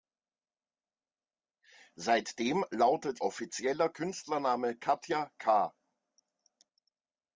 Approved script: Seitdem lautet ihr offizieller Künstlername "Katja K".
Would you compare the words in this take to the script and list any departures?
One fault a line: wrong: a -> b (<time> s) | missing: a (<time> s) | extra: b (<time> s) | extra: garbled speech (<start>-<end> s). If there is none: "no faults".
missing: ihr (3.2 s)